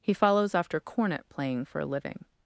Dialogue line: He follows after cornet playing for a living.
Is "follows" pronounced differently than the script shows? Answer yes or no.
no